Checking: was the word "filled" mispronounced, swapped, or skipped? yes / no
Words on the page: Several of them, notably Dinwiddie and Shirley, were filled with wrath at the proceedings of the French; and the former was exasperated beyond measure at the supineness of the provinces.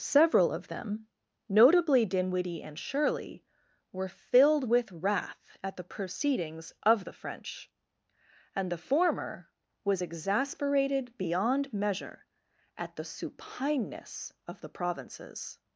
no